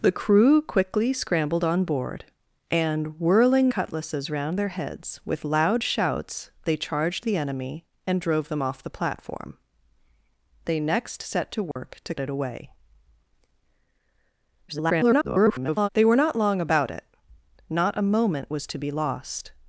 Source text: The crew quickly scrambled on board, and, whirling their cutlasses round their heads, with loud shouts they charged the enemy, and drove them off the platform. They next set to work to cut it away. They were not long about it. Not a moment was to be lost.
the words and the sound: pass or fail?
fail